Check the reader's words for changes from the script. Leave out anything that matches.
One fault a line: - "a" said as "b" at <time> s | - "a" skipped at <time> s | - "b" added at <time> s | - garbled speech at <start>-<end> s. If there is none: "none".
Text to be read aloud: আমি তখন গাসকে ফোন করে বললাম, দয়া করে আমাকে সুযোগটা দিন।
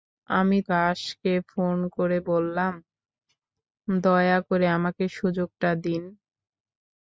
- "তখন" skipped at 0.6 s